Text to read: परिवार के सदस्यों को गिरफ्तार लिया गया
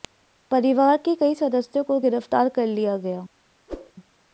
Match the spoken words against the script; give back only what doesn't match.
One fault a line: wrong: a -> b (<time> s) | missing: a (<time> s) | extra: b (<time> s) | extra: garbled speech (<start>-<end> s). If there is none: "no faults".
extra: कई (1.1 s)
extra: कर (2.5 s)